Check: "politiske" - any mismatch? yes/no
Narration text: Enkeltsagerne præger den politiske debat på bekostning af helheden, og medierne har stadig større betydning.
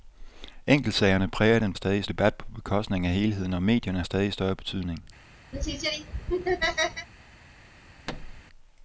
yes